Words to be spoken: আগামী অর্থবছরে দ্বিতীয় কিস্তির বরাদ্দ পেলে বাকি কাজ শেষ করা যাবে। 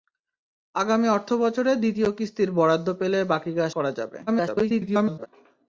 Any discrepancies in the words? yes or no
yes